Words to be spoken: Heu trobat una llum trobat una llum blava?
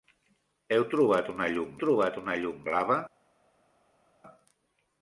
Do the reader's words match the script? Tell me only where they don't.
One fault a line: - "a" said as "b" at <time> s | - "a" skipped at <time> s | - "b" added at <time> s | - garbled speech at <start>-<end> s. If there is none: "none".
none